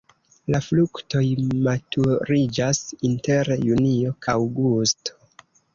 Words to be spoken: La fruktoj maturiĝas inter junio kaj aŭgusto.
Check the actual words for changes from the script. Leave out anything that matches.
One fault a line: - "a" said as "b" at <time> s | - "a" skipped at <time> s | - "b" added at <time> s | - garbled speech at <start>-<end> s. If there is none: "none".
- "kaj" skipped at 4.2 s